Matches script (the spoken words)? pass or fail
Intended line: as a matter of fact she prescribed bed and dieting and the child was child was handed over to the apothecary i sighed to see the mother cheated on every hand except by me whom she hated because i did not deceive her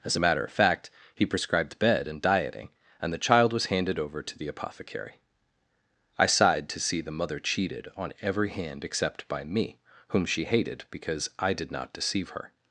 fail